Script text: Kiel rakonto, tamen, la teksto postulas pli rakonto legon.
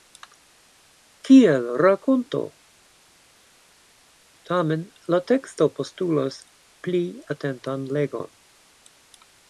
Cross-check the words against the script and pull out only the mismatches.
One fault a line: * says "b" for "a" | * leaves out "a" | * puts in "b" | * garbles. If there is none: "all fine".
* says "atentan" for "rakonto"